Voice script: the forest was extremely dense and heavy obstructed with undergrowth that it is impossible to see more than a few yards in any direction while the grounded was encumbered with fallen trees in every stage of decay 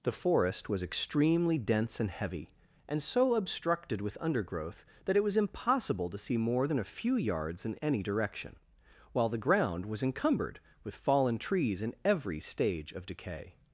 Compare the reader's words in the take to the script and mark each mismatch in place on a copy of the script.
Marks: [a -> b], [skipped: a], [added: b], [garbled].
the forest was extremely dense and heavy [added: and so] obstructed with undergrowth that it [is -> was] impossible to see more than a few yards in any direction while the [grounded -> ground] was encumbered with fallen trees in every stage of decay